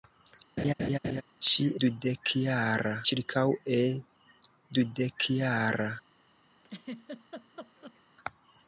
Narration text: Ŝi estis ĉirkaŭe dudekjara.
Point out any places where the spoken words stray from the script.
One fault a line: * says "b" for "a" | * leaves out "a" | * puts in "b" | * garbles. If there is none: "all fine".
* says "dudekjara" for "estis"